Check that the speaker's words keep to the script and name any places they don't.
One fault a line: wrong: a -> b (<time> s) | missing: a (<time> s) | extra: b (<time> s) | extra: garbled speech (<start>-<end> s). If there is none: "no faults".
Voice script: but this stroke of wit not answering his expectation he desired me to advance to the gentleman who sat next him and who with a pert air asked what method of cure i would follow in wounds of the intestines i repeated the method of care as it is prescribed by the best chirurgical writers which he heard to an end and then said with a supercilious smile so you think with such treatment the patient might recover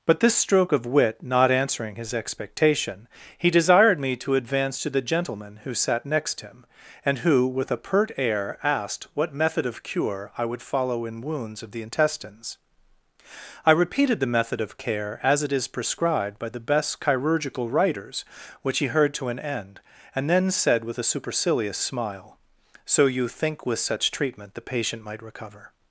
no faults